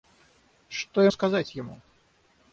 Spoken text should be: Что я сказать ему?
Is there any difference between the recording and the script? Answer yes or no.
no